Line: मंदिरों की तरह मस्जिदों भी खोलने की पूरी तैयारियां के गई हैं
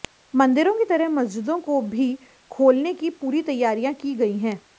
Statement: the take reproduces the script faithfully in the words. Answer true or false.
false